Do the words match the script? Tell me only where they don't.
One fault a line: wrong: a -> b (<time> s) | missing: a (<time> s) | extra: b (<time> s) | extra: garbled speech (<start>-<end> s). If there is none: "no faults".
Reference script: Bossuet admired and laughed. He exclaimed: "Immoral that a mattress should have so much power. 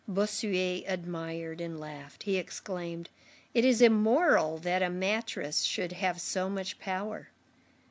extra: It is (3.5 s)